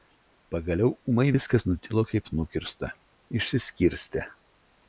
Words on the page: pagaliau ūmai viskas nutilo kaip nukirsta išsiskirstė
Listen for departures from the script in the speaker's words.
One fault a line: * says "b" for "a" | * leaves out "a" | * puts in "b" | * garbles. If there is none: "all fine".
all fine